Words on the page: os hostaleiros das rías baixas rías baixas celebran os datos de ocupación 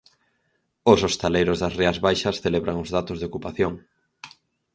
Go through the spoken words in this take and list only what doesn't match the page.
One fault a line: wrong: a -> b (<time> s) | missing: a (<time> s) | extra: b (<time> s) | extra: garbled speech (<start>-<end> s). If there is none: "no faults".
missing: rías baixas (2.4 s)